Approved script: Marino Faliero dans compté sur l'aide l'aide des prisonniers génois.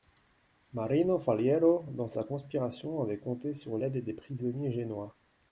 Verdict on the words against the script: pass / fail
fail